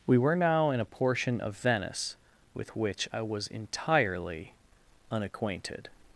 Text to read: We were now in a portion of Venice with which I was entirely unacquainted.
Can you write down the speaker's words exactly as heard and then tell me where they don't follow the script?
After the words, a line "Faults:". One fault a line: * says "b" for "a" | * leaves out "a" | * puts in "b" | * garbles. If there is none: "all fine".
We were now in a portion of Venice with which I was entirely unacquainted.
Faults:
all fine